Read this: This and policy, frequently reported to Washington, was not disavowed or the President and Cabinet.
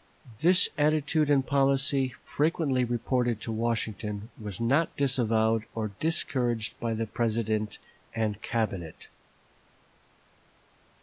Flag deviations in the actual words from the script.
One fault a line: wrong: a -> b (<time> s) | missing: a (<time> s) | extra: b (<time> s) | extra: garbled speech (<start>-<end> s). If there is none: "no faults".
extra: attitude (0.8 s)
extra: discouraged by (6.0 s)